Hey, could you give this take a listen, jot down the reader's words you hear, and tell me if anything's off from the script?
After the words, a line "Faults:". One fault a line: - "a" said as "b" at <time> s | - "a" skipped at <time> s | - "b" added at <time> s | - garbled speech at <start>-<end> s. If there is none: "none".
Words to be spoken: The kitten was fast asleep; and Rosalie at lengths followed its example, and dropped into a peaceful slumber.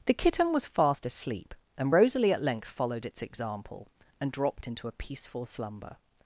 The kitten was fast asleep; and Rosalie at length followed its example, and dropped into a peaceful slumber.
Faults:
- "lengths" said as "length" at 2.4 s